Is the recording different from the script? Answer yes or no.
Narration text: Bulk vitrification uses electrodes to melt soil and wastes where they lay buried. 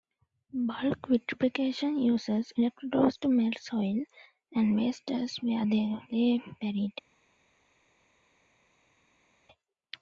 no